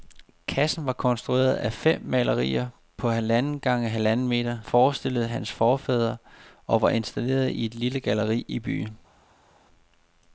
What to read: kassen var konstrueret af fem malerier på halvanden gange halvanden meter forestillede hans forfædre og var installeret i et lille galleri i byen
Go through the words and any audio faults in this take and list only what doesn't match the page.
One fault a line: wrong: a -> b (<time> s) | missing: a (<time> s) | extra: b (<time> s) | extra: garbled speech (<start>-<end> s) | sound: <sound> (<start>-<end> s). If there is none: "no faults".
no faults